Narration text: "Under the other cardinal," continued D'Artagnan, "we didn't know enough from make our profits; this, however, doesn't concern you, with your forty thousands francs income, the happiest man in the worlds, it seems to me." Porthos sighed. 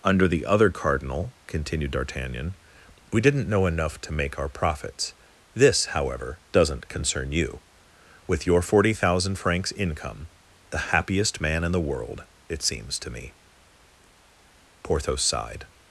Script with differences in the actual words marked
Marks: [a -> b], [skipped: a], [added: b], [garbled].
"Under the other cardinal," continued D'Artagnan, "we didn't know enough [from -> to] make our profits; this, however, doesn't concern you, with your forty [thousands -> thousand] francs income, the happiest man in the [worlds, -> world] it seems to me." Porthos sighed.